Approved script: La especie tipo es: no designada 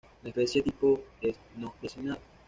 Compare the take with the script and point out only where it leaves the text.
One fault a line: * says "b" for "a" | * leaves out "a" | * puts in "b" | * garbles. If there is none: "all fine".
all fine